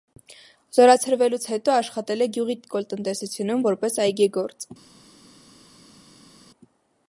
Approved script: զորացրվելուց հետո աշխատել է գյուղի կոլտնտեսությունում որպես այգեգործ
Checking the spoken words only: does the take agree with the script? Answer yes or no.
yes